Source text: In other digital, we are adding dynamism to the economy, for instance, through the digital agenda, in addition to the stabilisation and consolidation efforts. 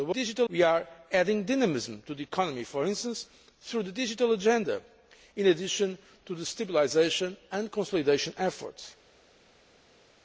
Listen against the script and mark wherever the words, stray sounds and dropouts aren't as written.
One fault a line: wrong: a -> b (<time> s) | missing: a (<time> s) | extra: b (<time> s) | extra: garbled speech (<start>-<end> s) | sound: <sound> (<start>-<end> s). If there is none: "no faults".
no faults